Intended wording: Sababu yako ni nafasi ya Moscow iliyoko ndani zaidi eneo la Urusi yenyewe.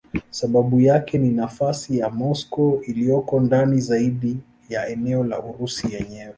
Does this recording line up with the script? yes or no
no